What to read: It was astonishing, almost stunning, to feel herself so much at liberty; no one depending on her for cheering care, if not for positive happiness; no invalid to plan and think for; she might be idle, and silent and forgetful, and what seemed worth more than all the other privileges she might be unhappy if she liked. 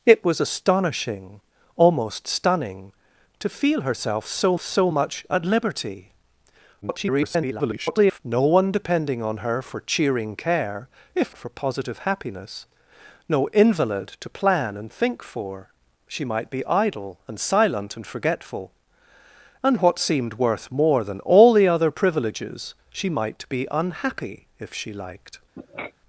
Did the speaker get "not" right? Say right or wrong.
wrong